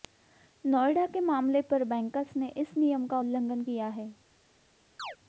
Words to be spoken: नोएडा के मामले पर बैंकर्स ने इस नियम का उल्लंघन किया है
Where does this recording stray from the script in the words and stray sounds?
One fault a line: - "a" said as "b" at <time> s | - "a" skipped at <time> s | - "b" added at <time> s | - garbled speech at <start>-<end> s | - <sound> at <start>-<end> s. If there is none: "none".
- chirp at 5.0-5.2 s